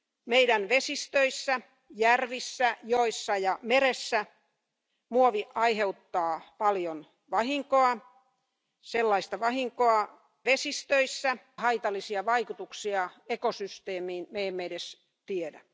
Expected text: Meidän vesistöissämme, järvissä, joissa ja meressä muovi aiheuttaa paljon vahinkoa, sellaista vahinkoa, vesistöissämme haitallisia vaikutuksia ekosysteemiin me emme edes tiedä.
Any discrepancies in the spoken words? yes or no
no